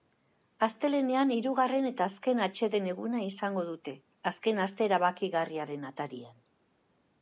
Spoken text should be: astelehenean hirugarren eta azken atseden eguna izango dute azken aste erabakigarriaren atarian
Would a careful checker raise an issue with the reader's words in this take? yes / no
no